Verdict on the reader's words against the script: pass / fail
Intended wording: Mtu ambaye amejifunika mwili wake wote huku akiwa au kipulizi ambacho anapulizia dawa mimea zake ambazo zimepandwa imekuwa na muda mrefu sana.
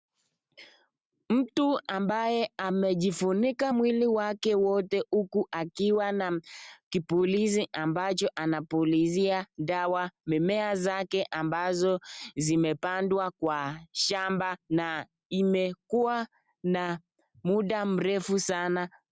fail